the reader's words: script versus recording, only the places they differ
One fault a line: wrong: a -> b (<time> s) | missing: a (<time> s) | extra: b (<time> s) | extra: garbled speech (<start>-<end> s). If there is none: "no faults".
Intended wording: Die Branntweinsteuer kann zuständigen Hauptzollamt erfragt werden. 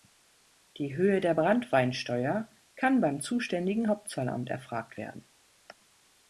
extra: Höhe der (0.9 s)
extra: beim (3.0 s)